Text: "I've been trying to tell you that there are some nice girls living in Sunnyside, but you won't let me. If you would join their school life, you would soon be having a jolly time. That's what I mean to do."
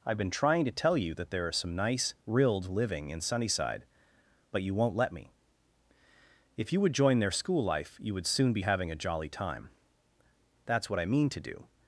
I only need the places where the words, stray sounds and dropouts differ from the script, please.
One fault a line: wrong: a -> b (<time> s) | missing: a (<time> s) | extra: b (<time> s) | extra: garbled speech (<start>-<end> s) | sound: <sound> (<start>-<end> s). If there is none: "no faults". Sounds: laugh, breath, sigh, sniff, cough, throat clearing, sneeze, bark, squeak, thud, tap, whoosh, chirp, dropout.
wrong: girls -> rilled (2.2 s)